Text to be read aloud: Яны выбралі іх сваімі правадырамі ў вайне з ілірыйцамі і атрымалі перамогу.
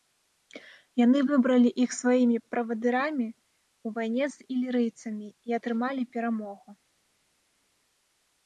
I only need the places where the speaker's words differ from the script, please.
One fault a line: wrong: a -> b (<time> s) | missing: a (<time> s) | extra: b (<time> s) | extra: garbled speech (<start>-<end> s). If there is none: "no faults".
no faults